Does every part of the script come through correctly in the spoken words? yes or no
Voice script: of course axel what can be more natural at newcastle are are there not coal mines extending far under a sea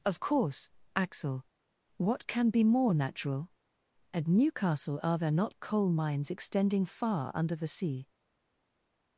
no